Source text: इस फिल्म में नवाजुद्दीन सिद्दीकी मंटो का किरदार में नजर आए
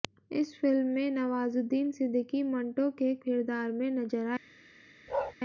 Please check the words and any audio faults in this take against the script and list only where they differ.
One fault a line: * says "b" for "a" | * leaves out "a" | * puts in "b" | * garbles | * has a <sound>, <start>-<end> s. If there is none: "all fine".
* says "के" for "का"
* has a bark, 5.1-5.3 s